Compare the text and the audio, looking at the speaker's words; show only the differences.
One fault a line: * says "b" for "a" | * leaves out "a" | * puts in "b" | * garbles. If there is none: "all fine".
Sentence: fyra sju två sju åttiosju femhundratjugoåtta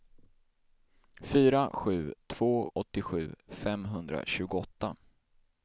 * leaves out "sju"